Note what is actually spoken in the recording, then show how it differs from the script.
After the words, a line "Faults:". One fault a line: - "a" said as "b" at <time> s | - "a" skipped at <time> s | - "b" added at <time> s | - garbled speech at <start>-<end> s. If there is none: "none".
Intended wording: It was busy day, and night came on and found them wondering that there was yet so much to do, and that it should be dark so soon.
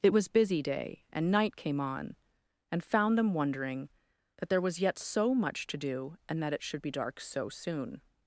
It was busy day, and night came on and found them wondering that there was yet so much to do, and that it should be dark so soon.
Faults:
none